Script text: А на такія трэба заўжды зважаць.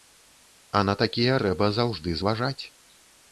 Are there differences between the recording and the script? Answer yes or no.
no